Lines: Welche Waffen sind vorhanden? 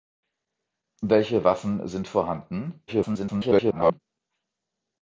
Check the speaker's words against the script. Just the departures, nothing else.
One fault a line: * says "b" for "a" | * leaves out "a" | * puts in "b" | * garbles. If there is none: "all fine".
* garbles